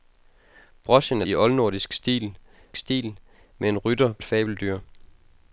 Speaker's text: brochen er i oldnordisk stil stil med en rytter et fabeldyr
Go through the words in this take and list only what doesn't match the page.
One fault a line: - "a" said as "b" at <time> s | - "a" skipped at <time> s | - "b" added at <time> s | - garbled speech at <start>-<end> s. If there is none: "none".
none